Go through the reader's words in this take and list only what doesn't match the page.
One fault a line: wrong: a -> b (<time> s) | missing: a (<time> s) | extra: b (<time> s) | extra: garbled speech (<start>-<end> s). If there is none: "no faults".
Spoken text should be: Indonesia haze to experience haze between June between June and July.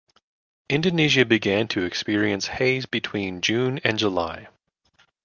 wrong: haze -> began (1.2 s)
missing: between June (3.8 s)